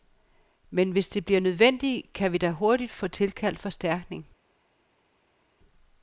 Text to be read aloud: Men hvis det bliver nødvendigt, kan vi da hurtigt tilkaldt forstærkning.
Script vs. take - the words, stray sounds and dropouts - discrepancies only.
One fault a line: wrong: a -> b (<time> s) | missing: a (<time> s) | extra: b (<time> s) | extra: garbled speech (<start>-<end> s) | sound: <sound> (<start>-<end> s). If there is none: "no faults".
extra: få (2.9 s)